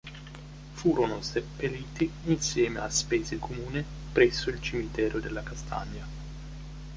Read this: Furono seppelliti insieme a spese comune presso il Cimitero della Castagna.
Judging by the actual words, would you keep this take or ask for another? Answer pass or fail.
pass